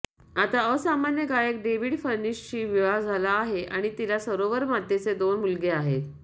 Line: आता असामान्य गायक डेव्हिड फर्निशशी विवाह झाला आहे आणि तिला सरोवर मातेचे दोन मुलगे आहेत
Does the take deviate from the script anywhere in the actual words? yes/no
no